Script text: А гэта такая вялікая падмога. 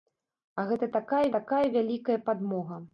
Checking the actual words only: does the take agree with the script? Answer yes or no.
no